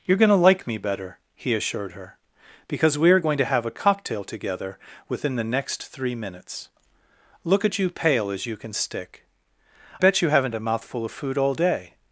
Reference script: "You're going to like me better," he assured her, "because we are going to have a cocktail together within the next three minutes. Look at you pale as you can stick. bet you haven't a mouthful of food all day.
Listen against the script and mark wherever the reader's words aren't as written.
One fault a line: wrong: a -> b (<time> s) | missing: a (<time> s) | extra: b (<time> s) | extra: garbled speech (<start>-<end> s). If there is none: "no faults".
no faults